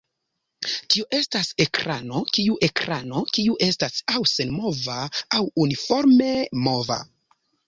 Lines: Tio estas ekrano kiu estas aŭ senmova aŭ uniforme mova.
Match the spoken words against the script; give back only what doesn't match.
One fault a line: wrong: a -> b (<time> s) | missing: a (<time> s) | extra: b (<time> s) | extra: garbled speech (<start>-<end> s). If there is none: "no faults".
extra: ekrano kiu (2.7 s)